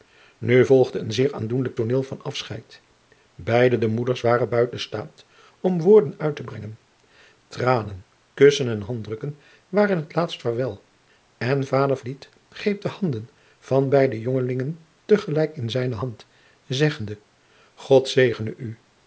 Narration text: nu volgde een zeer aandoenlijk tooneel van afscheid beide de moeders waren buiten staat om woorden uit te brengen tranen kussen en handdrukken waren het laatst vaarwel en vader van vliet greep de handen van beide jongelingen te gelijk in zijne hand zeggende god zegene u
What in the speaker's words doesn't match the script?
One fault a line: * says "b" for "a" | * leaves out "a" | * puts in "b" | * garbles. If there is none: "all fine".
* leaves out "van"